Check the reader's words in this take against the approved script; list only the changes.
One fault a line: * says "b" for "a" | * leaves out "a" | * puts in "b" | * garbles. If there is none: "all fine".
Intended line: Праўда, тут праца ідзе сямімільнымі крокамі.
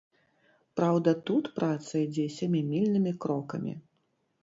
all fine